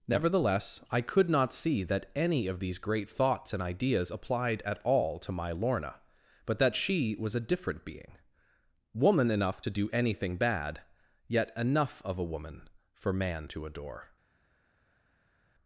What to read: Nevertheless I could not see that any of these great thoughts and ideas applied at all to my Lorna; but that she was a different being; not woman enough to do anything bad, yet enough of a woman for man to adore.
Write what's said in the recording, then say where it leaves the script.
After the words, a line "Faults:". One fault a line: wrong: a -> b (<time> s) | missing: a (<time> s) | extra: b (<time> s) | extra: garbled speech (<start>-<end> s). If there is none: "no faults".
Nevertheless I could not see that any of these great thoughts and ideas applied at all to my Lorna; but that she was a different being; woman enough to do anything bad, yet enough of a woman for man to adore.
Faults:
missing: not (8.2 s)